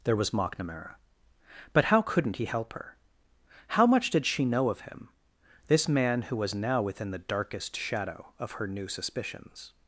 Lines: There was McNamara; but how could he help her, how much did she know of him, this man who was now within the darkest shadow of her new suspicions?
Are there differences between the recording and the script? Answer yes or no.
yes